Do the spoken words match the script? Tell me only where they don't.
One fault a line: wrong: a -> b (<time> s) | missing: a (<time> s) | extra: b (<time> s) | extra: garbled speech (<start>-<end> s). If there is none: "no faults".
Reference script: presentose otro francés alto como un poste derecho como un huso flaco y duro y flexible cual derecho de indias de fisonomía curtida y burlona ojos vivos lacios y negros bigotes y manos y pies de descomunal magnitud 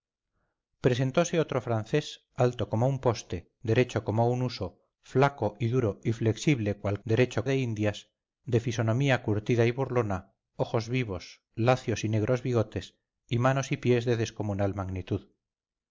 no faults